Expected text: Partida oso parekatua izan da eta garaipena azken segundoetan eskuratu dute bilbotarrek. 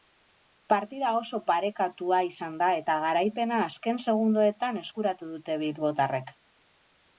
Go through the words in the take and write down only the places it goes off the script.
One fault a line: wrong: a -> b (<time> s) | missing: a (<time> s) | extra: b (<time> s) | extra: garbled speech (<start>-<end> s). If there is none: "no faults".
no faults